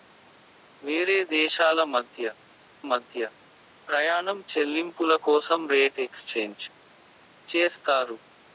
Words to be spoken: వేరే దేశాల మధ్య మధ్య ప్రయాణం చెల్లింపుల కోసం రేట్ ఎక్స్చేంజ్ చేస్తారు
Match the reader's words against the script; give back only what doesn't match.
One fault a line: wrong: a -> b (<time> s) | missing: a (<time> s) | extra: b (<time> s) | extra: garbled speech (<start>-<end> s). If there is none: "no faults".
no faults